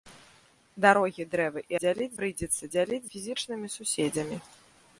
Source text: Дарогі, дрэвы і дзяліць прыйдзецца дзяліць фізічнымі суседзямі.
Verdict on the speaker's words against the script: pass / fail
pass